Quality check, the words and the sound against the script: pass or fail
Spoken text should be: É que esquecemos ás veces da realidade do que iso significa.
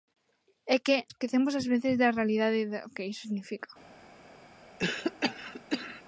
fail